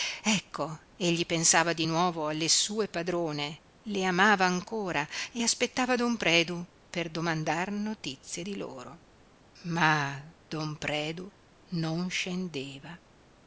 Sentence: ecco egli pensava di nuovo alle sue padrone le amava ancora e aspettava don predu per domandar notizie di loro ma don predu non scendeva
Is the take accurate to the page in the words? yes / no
yes